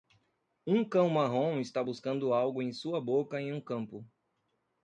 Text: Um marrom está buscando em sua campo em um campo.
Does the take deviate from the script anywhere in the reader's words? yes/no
yes